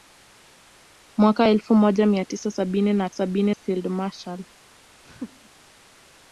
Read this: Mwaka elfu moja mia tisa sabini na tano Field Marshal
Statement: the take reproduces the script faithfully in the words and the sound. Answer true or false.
false